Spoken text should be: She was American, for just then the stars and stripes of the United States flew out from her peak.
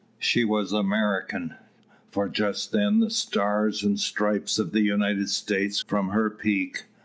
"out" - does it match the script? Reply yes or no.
no